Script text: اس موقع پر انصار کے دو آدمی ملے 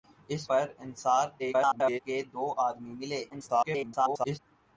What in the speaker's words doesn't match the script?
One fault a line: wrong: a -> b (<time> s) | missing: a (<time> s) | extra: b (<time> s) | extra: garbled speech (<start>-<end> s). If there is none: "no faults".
missing: موقع (0.4 s)
extra: garbled speech (1.4-2.0 s)
extra: garbled speech (3.3-4.4 s)